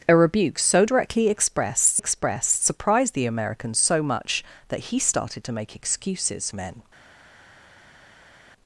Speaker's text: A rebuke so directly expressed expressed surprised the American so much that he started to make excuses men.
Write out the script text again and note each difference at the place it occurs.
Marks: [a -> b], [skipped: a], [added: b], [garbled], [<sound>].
A rebuke so directly expressed expressed surprised the American so much that he started to make excuses men.